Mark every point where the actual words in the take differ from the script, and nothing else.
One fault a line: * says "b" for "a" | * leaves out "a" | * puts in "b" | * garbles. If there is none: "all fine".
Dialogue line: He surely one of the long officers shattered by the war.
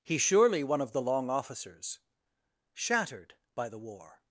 all fine